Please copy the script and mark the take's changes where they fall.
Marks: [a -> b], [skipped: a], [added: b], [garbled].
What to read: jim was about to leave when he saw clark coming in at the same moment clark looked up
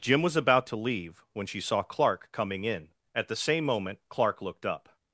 jim was about to leave when [he -> she] saw clark coming in at the same moment clark looked up